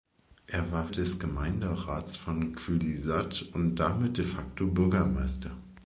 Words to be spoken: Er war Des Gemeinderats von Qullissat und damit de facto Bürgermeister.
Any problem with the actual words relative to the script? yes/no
no